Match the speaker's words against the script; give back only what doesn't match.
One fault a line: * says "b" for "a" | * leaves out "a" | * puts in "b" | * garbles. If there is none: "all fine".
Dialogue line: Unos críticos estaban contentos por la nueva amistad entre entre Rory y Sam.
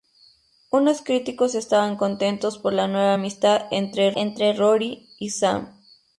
all fine